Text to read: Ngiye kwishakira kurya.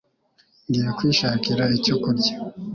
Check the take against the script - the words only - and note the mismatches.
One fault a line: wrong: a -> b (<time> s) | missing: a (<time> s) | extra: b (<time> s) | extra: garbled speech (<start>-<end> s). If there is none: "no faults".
extra: icyo (1.8 s)